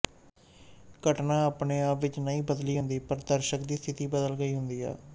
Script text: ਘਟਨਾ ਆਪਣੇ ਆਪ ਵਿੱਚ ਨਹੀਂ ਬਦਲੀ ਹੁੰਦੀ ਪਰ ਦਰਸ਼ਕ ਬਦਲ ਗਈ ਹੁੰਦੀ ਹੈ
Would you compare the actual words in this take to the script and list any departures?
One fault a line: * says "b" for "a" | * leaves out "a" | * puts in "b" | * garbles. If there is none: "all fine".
* puts in "ਦੀ ਸਥਿਤੀ"